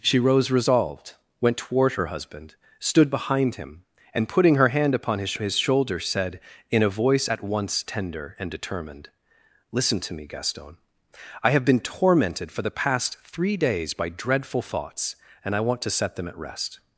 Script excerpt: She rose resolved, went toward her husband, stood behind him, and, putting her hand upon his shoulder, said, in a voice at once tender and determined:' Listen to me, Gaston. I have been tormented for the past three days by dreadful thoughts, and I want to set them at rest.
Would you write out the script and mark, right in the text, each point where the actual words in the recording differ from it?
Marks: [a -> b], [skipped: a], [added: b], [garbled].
She rose resolved, went toward her husband, stood behind him, and, putting her hand upon his [added: his] shoulder, said, in a voice at once tender and determined:' Listen to me, Gaston. I have been tormented for the past three days by dreadful thoughts, and I want to set them at rest.